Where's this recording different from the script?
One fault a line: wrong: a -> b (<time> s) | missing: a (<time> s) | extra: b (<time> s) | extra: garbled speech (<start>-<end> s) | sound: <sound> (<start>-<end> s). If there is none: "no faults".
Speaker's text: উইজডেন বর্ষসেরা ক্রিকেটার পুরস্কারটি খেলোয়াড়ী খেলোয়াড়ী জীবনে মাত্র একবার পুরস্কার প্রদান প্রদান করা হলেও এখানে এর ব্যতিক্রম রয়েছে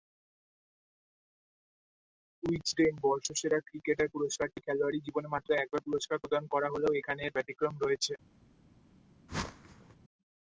missing: খেলোয়াড়ী (5.0 s)
missing: প্রদান (6.4 s)
sound: whoosh (9.3-10.0 s)